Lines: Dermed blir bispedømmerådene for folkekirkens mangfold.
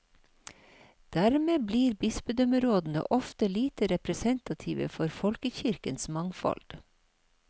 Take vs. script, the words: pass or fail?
fail